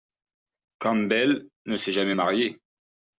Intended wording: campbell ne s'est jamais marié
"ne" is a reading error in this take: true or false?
false